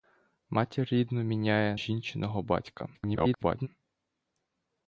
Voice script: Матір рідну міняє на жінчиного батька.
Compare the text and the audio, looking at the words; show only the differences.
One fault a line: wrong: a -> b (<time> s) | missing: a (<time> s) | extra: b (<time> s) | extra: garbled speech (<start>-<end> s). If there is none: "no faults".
missing: на (1.8 s)
extra: garbled speech (2.9-3.7 s)